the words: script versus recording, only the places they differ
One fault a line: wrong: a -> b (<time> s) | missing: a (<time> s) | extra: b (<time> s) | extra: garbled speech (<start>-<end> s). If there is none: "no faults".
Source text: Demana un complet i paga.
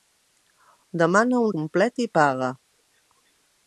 no faults